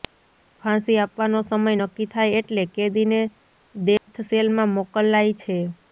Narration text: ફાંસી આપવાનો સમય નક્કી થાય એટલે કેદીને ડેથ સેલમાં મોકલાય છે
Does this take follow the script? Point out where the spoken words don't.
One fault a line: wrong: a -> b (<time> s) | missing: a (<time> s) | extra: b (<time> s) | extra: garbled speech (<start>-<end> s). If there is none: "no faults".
no faults